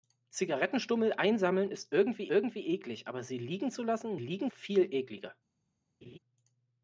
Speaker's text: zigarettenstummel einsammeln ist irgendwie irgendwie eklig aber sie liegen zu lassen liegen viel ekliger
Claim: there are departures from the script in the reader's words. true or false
false